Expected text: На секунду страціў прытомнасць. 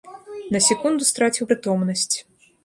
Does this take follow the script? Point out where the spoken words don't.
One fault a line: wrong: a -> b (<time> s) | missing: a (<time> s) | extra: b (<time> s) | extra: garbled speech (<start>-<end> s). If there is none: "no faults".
no faults